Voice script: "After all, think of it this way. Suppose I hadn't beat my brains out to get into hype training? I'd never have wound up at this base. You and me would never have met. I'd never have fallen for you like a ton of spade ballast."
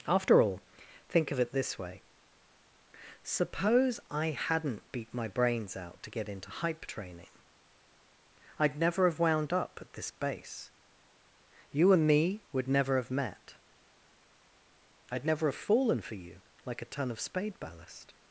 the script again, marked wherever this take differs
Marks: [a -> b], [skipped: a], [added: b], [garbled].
"After all, think of it this way. Suppose I hadn't beat my brains out to get into hype training? I'd never have wound up at this base. You and me would never have met. I'd never have fallen for you like a ton of spade ballast."